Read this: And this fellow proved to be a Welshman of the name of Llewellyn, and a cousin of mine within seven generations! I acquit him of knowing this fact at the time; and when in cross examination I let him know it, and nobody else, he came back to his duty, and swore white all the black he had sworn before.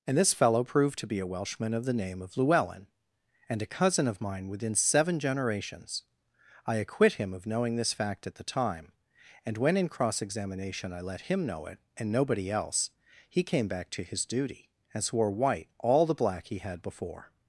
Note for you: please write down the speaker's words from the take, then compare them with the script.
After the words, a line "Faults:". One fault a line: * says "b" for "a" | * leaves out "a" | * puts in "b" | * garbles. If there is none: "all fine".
And this fellow proved to be a Welshman of the name of Llewellyn, and a cousin of mine within seven generations! I acquit him of knowing this fact at the time; and when in cross examination I let him know it, and nobody else, he came back to his duty, and swore white all the black he had before.
Faults:
* leaves out "sworn"